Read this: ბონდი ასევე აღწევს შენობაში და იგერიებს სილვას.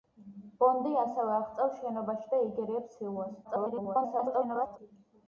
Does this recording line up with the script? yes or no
no